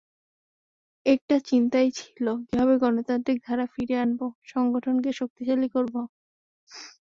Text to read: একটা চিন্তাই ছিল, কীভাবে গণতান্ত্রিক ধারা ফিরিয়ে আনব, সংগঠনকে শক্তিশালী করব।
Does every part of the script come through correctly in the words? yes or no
yes